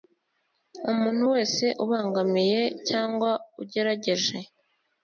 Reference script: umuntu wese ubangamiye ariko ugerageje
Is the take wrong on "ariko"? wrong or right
wrong